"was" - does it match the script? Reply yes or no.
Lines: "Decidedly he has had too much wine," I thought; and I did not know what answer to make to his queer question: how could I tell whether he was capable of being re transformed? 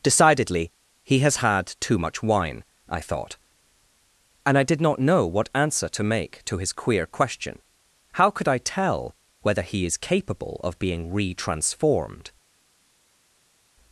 no